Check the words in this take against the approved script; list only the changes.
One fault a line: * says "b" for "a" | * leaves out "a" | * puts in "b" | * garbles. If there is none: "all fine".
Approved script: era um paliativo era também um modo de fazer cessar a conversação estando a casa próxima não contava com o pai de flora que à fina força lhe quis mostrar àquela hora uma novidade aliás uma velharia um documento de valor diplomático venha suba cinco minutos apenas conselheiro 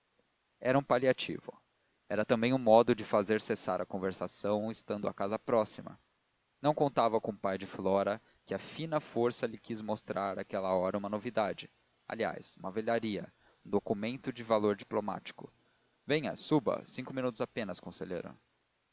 all fine